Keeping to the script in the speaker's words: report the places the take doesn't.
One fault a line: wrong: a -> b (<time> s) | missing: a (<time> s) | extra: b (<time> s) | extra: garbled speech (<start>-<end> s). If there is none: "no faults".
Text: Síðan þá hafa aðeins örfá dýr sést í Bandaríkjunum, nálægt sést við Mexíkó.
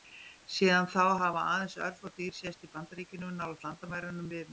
wrong: sést -> landamærunum (3.7 s)